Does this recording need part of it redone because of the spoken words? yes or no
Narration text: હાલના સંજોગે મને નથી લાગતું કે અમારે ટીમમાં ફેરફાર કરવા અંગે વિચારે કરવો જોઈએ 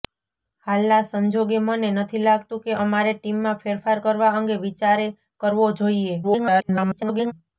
yes